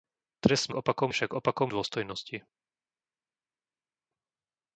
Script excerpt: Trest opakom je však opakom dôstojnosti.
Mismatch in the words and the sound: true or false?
false